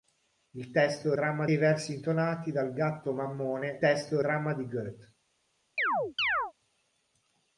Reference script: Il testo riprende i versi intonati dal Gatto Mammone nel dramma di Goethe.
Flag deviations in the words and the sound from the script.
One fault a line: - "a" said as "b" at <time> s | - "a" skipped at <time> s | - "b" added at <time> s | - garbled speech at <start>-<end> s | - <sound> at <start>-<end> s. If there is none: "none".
- "riprende" said as "dramma" at 1.1 s
- "nel" said as "testo" at 3.8 s
- chirp at 5.8-6.5 s